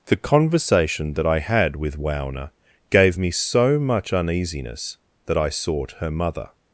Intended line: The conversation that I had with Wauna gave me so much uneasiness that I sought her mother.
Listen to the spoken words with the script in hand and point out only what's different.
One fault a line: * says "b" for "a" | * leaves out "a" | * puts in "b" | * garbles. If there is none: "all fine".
all fine